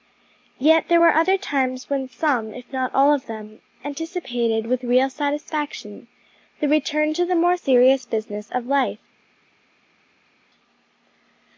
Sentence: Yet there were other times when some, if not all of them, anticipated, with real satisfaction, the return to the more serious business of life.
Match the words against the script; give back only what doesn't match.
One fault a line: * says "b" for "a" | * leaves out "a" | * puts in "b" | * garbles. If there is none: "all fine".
all fine